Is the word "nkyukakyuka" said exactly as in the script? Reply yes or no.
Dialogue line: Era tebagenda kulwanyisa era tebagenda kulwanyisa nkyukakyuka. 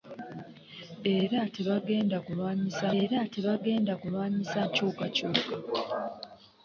yes